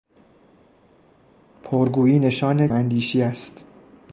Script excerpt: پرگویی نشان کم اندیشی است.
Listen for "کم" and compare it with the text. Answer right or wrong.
wrong